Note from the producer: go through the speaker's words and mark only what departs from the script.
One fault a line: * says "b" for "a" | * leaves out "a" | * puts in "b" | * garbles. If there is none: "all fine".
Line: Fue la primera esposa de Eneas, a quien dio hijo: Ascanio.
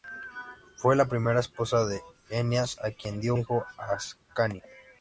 all fine